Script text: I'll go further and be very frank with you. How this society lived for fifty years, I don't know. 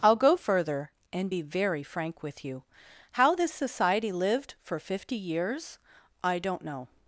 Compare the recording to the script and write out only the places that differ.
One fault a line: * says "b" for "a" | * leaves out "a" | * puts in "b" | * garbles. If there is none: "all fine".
all fine